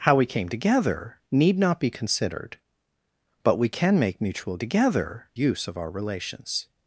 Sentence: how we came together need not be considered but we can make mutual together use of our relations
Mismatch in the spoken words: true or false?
false